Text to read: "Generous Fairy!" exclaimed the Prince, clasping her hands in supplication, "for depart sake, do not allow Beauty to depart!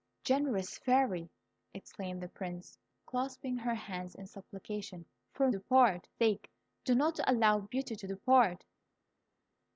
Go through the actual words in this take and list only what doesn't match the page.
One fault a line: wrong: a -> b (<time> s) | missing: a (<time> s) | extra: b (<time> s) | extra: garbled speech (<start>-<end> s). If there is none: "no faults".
no faults